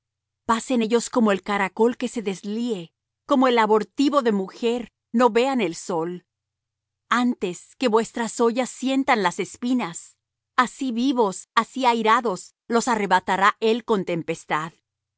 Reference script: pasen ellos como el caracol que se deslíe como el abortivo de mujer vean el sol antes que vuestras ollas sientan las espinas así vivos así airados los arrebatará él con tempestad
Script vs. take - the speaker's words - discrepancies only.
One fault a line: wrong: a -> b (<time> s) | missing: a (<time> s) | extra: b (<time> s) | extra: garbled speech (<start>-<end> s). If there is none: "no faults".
extra: no (5.1 s)